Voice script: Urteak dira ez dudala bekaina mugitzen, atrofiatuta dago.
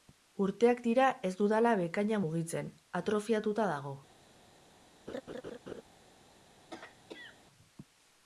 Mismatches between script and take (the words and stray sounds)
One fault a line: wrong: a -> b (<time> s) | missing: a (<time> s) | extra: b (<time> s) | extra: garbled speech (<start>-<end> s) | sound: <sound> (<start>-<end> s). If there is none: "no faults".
sound: laugh (5.1-5.8 s)
sound: throat clearing (6.7-7.4 s)